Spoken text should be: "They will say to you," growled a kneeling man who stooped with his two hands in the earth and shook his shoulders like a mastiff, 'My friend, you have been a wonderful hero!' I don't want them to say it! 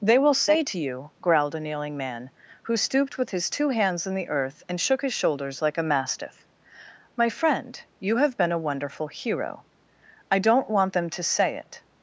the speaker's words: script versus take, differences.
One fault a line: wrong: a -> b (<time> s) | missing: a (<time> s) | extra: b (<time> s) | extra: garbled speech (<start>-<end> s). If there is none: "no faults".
no faults